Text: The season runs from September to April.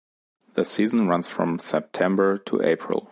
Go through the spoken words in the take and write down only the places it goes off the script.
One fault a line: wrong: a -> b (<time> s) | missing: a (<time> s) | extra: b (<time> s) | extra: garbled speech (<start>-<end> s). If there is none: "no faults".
no faults